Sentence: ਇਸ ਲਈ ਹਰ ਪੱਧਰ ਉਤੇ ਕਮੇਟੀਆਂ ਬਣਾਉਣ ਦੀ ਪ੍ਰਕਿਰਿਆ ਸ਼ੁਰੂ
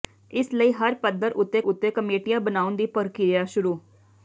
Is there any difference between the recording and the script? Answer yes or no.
yes